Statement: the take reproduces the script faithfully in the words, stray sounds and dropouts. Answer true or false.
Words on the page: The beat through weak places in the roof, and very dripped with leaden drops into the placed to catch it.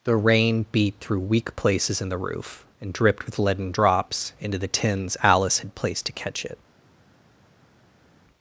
false